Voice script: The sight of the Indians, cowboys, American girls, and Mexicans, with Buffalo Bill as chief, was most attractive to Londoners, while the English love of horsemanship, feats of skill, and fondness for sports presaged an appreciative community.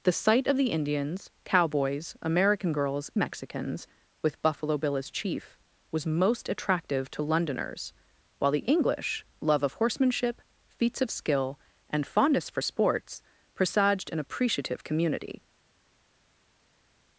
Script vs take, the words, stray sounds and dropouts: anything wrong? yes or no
yes